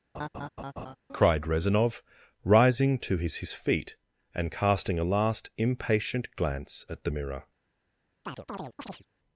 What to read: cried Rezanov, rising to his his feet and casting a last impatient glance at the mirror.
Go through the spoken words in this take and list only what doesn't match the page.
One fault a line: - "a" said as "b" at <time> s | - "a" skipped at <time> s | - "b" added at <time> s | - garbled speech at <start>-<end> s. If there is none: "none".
none